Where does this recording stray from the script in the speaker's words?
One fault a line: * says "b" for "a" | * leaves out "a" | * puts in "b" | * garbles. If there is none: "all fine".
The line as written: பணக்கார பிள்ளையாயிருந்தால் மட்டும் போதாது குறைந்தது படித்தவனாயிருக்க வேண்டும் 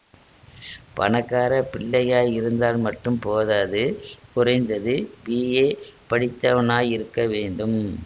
* puts in "பிஏ"